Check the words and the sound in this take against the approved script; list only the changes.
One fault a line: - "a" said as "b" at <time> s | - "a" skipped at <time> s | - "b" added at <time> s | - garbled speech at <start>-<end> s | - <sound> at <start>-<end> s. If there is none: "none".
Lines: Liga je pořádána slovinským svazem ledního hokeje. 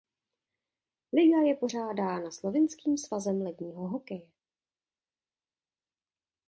none